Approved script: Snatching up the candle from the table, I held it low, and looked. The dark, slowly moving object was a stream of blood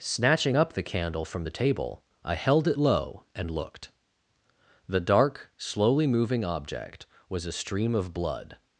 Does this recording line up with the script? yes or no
yes